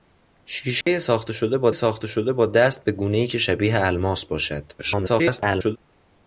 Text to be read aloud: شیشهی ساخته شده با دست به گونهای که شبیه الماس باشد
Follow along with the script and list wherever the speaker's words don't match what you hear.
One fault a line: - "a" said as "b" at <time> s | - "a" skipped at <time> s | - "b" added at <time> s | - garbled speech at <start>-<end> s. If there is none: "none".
- "ساخته شده با" added at 1.7 s
- garbled speech at 4.8-5.8 s